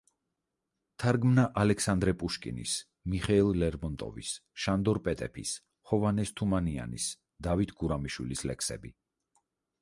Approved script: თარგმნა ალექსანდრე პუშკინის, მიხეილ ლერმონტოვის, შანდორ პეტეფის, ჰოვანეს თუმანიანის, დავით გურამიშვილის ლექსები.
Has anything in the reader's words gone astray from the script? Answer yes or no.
no